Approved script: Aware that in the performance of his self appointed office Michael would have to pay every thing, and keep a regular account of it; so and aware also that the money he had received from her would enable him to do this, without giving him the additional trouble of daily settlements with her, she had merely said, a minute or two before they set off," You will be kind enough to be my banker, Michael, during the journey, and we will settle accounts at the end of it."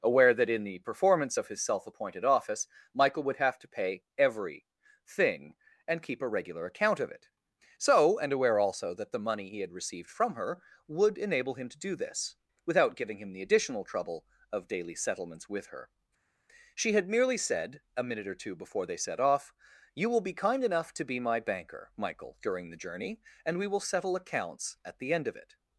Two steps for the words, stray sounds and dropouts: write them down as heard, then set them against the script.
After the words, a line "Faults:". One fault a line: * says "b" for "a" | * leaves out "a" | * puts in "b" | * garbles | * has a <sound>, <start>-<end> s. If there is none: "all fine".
Aware that in the performance of his self appointed office Michael would have to pay every thing, and keep a regular account of it; so and aware also that the money he had received from her would enable him to do this, without giving him the additional trouble of daily settlements with her, she had merely said, a minute or two before they set off," You will be kind enough to be my banker, Michael, during the journey, and we will settle accounts at the end of it."
Faults:
all fine